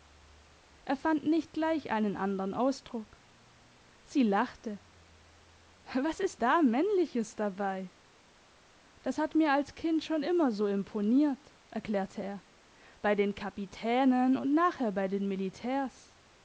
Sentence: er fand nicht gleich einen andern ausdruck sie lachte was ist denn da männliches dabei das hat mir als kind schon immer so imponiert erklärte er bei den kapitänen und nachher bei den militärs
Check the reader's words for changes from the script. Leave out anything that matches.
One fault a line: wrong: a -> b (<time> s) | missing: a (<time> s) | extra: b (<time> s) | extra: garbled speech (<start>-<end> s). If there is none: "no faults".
missing: denn (6.4 s)